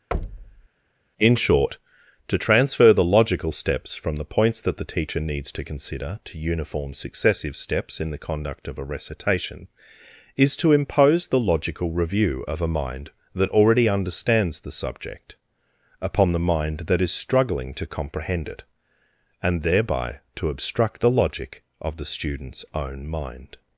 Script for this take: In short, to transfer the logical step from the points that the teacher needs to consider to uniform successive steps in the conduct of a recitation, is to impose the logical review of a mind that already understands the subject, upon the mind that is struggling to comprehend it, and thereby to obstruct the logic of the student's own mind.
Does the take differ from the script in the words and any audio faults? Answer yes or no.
yes